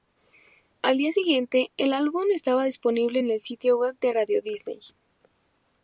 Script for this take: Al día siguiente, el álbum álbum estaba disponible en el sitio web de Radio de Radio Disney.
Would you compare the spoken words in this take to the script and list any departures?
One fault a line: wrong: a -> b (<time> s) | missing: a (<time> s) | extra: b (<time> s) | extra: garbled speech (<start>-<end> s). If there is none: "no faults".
missing: álbum (2.2 s)
missing: de Radio (4.4 s)